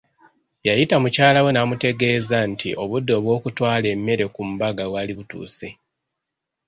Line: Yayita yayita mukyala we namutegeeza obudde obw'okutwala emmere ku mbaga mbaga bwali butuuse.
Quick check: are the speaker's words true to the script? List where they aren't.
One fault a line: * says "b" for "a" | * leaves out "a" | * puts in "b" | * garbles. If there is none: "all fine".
* leaves out "yayita"
* puts in "nti"
* leaves out "mbaga"